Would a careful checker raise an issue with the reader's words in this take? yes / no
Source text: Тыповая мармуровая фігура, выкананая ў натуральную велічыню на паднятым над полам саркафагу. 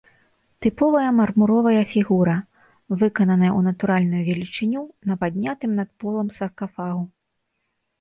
no